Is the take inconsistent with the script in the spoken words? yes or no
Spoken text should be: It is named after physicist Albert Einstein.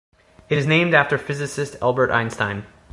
no